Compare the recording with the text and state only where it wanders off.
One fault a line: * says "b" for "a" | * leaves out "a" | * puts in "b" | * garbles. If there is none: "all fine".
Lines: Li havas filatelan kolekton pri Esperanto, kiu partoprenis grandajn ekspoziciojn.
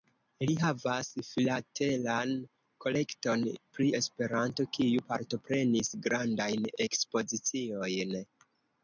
all fine